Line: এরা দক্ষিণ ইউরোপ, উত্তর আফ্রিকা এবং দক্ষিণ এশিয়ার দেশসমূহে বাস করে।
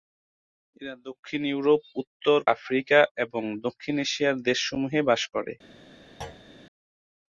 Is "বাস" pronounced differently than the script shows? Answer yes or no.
no